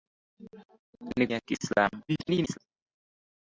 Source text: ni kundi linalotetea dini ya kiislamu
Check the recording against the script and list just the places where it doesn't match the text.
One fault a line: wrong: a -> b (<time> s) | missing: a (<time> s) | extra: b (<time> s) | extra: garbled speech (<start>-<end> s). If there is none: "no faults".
missing: kundi linalotetea dini (1.3 s)
extra: garbled speech (2.1-2.6 s)